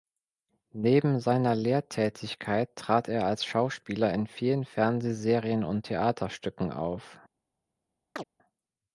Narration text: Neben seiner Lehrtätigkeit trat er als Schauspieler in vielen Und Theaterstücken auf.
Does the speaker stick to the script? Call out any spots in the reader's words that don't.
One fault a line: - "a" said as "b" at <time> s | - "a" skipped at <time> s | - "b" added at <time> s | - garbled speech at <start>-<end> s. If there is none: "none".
- "Fernsehserien" added at 4.7 s